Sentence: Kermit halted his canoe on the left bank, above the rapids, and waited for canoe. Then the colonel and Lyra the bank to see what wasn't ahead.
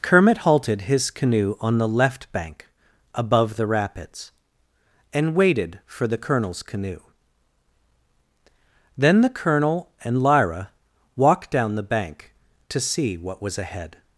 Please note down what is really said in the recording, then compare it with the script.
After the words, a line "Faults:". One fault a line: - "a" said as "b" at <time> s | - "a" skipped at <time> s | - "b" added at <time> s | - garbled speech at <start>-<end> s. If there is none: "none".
Kermit halted his canoe on the left bank, above the rapids, and waited for the colonel's canoe. Then the colonel and Lyra walked down the bank to see what was ahead.
Faults:
- "the colonel's" added at 6.1 s
- "walked down" added at 11.1 s
- "wasn't" said as "was" at 13.4 s